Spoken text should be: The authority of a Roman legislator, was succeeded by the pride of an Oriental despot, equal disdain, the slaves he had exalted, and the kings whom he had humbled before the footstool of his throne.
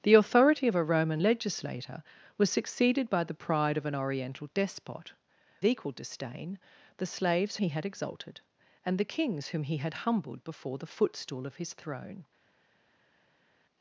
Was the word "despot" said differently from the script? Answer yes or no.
no